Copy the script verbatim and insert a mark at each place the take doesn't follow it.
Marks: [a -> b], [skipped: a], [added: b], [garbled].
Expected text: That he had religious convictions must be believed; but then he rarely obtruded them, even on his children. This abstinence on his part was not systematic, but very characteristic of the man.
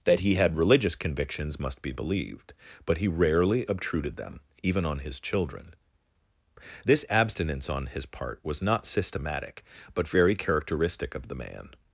That he had religious convictions must be believed; but [skipped: then] he rarely obtruded them, even on his children. This abstinence on his part was not systematic, but very characteristic of the man.